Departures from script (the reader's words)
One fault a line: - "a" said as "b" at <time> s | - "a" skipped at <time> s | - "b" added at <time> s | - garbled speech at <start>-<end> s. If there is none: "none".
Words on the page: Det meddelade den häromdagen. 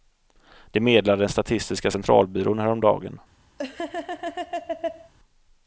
- "statistiska centralbyrån" added at 1.3 s